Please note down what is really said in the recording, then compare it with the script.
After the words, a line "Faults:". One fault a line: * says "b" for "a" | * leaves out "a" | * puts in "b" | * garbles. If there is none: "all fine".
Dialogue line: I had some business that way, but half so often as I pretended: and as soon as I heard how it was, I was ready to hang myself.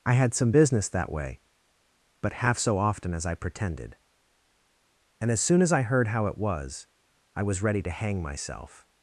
I had some business that way, but half so often as I pretended: and as soon as I heard how it was, I was ready to hang myself.
Faults:
all fine